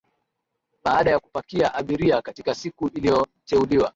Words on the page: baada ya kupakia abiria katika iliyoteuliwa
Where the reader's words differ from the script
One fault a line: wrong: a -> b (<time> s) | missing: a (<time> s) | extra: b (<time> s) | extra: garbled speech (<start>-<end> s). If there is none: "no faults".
extra: siku (2.5 s)